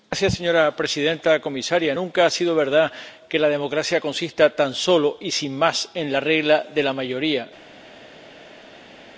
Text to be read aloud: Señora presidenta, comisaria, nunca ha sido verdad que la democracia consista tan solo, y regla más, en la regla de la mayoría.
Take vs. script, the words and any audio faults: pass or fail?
fail